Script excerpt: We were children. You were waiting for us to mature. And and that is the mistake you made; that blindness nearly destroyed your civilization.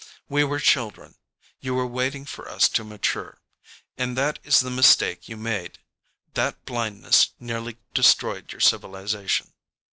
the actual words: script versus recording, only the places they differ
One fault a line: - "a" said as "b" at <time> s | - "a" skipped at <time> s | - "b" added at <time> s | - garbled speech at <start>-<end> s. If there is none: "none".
- "and" skipped at 4.2 s